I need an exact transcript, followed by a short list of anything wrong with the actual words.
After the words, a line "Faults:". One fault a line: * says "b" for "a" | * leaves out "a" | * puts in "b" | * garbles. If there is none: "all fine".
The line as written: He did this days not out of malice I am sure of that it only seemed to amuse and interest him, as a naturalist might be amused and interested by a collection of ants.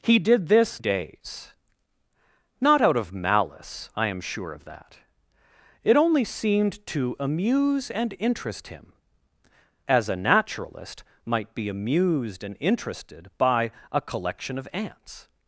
He did this days not out of malice I am sure of that it only seemed to amuse and interest him, as a naturalist might be amused and interested by a collection of ants.
Faults:
all fine